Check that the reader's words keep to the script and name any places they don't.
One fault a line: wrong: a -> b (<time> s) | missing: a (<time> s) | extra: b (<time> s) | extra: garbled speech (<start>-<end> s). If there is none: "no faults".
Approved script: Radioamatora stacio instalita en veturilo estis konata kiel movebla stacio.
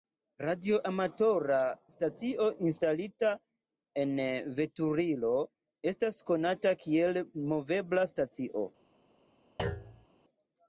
wrong: estis -> estas (5.9 s)